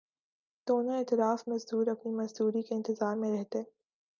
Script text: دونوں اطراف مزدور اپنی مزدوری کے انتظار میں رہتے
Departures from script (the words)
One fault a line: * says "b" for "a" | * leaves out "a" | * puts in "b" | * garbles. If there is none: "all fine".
all fine